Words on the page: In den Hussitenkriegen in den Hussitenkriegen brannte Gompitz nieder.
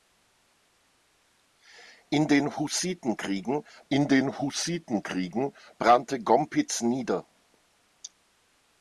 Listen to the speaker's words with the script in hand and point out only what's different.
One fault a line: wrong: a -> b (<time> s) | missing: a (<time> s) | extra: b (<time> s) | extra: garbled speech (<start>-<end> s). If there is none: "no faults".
no faults